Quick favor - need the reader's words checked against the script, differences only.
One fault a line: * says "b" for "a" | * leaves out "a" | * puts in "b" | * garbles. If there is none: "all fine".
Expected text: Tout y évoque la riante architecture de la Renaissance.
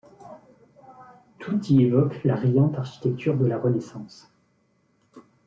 all fine